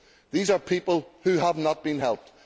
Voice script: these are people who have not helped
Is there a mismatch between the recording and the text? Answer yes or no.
yes